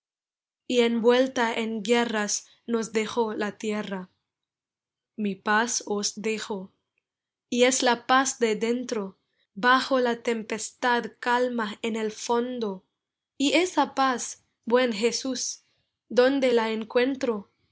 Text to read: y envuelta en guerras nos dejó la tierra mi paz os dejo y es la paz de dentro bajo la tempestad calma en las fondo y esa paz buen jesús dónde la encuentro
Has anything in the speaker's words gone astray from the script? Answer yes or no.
yes